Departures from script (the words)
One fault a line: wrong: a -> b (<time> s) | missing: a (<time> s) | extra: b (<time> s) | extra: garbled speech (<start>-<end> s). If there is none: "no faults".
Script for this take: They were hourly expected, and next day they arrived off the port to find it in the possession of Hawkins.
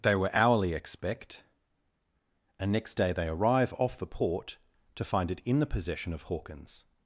wrong: expected -> expect (0.7 s)
wrong: arrived -> arrive (3.3 s)